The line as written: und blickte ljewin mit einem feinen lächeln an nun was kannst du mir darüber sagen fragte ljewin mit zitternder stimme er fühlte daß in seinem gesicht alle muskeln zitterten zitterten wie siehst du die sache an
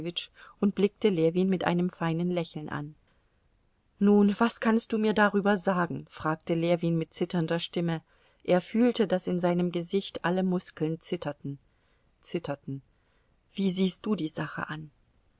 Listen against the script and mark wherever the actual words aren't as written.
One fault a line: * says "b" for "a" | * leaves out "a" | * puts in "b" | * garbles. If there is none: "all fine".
all fine